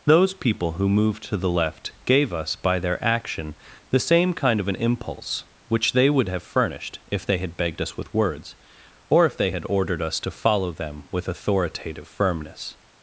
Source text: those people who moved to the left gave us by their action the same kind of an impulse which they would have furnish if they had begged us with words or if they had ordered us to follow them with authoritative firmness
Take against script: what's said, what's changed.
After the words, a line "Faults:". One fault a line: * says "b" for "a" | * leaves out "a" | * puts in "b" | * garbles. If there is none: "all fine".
those people who moved to the left gave us by their action the same kind of an impulse which they would have furnished if they had begged us with words or if they had ordered us to follow them with authoritative firmness
Faults:
* says "furnished" for "furnish"